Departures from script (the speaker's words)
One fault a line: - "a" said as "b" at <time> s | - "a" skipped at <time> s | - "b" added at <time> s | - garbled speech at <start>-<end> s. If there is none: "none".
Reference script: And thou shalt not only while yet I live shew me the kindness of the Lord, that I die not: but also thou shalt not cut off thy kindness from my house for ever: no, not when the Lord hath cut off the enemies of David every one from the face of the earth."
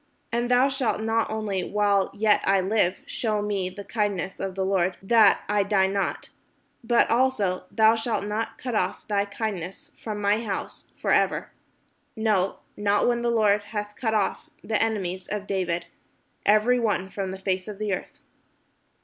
none